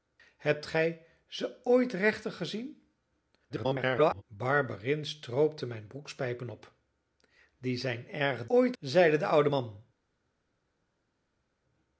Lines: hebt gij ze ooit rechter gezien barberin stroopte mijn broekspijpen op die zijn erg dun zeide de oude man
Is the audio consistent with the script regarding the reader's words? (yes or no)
no